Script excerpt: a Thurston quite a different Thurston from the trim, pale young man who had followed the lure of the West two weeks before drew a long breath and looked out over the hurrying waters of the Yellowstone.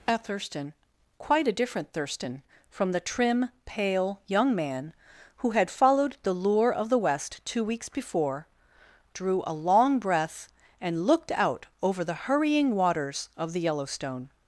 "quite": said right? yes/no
yes